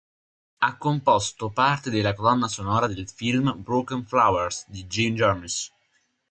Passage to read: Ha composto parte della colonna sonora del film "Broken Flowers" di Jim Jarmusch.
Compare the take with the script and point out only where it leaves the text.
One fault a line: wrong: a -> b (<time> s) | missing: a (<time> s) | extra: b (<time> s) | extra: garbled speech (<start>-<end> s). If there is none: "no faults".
no faults